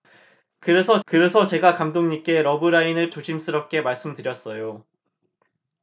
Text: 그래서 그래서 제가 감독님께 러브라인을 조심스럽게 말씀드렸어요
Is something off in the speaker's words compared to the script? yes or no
no